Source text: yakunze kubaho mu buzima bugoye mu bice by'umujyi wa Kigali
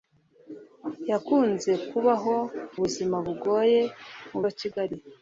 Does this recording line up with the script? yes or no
no